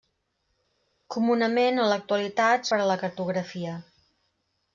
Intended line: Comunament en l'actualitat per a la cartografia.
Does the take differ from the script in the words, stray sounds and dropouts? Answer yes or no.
no